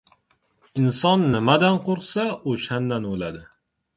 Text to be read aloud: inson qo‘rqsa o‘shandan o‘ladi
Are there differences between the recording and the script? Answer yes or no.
yes